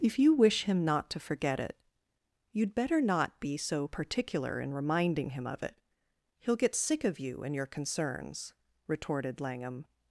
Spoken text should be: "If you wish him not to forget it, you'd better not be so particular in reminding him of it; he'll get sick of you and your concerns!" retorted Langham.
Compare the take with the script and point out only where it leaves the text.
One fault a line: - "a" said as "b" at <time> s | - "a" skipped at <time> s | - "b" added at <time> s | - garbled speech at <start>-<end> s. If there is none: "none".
none